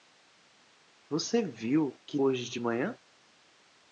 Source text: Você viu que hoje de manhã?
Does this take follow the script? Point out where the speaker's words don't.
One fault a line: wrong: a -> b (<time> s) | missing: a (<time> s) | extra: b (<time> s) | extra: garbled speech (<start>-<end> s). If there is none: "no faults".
no faults